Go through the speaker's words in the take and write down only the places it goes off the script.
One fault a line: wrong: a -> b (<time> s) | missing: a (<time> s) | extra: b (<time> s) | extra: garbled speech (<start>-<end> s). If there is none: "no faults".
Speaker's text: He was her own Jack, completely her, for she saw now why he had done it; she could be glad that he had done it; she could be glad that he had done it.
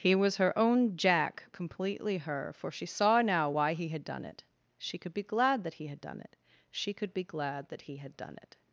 no faults